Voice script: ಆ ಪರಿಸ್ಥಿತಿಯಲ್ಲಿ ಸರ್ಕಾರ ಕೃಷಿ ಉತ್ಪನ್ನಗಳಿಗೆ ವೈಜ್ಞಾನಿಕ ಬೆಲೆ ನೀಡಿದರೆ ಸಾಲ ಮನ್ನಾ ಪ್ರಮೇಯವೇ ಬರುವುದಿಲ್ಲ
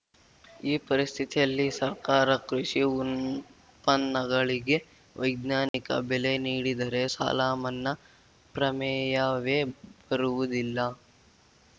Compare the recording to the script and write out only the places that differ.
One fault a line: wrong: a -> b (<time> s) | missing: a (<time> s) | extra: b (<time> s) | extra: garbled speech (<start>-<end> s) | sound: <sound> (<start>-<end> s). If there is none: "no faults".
wrong: ಆ -> ಈ (0.6 s)
sound: dropout (5.7-5.7 s)